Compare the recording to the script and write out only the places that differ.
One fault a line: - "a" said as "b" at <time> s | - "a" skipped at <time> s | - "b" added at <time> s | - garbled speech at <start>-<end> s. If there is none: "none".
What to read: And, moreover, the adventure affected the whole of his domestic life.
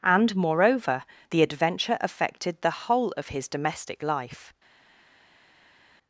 none